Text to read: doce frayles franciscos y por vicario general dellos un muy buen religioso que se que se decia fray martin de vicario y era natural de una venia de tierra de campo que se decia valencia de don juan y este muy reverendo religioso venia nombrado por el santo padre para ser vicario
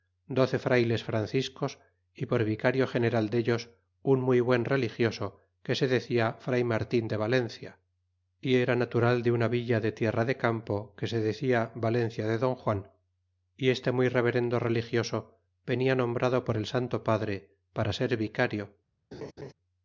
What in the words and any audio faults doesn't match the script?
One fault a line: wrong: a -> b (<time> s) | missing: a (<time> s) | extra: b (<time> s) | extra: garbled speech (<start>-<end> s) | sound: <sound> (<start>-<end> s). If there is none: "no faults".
missing: que se (5.9 s)
wrong: vicario -> valencia (7.2 s)
wrong: venia -> villa (9.5 s)
sound: laugh (19.1-19.5 s)